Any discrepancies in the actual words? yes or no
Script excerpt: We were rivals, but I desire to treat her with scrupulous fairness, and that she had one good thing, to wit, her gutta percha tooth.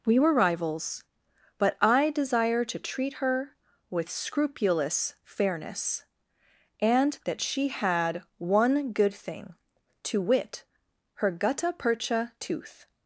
no